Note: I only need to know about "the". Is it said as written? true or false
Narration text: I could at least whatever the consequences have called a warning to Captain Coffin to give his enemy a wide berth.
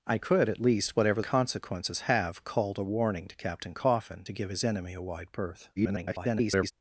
false